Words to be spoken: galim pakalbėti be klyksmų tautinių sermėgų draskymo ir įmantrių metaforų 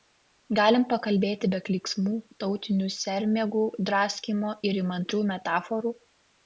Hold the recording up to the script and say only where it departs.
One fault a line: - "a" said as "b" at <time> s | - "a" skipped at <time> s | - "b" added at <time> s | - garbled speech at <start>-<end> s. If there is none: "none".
none